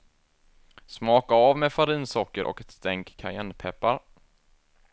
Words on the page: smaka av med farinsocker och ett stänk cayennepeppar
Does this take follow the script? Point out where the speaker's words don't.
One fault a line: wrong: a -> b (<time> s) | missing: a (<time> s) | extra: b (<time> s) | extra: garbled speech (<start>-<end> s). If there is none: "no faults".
no faults